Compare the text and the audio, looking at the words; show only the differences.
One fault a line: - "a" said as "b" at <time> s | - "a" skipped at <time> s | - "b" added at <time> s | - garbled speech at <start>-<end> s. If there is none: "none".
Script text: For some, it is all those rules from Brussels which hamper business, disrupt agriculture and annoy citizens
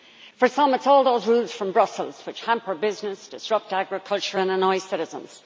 none